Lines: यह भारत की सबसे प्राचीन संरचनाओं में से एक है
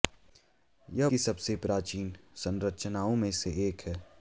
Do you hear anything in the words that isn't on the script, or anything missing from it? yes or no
yes